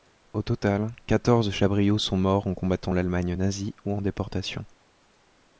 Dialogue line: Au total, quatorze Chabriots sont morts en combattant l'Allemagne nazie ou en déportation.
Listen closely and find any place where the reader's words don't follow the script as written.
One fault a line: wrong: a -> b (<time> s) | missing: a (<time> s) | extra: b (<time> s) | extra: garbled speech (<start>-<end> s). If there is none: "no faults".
no faults